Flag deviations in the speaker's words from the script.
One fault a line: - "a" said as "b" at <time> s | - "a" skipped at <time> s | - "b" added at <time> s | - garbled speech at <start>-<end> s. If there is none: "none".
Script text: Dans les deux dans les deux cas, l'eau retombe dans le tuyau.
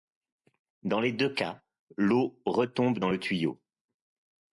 - "dans les deux" skipped at 1.3 s